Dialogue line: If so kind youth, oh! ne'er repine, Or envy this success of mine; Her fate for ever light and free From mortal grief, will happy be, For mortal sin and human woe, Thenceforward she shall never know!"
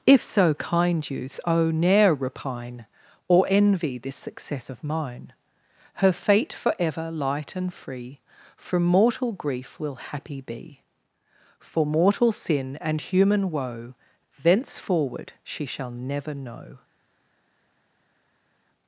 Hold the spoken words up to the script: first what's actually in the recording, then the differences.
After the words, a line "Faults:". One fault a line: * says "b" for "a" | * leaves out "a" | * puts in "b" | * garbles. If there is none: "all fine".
If so kind youth, oh! ne'er repine, Or envy this success of mine; Her fate for ever light and free From mortal grief, will happy be, For mortal sin and human woe, Thenceforward she shall never know!"
Faults:
all fine